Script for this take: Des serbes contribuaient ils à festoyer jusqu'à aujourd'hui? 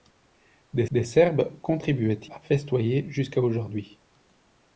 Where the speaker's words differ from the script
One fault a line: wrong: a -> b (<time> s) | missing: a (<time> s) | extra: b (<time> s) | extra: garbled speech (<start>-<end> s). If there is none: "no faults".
extra: des (0.9 s)
missing: ils (2.2 s)